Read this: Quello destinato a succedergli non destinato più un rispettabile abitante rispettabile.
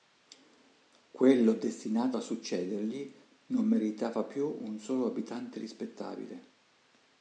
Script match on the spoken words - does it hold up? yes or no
no